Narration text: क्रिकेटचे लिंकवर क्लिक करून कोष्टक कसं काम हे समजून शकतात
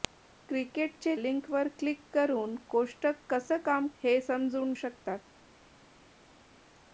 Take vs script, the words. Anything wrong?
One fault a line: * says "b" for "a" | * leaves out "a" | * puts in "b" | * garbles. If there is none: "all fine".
all fine